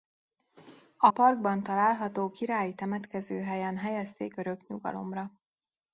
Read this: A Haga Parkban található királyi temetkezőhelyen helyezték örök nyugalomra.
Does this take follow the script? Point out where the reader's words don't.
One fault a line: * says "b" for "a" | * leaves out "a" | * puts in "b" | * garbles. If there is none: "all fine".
* leaves out "Haga"